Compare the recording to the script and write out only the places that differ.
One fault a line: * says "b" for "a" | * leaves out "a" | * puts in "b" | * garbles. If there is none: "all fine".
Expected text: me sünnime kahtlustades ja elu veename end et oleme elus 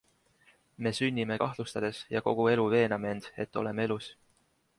* puts in "kogu"